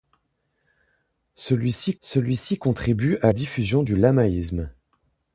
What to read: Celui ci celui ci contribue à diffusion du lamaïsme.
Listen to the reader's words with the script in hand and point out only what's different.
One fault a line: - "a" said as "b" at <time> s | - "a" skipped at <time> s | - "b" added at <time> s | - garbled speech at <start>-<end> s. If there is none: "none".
none